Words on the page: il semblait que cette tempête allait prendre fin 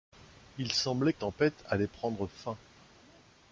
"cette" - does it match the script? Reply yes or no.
no